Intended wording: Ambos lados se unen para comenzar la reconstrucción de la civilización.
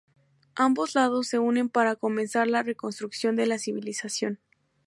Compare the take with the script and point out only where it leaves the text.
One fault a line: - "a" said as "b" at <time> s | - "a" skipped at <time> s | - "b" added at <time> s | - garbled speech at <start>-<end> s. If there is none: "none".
none